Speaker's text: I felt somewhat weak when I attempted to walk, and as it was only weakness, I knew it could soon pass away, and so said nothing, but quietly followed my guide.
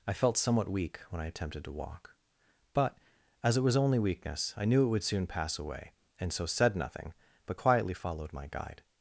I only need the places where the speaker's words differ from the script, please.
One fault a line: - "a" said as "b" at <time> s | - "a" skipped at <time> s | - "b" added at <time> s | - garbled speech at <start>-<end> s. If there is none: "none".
- "and" said as "but" at 2.7 s
- "could" said as "would" at 4.9 s